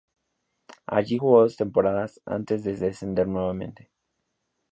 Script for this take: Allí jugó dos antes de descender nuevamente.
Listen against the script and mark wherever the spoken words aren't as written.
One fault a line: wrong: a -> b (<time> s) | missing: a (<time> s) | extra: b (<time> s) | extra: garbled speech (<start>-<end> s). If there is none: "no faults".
extra: temporadas (1.6 s)